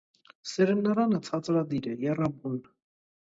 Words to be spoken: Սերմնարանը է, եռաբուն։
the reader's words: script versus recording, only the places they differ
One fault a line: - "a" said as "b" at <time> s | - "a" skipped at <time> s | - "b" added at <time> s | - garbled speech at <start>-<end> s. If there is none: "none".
- "ցածրադիր" added at 1.3 s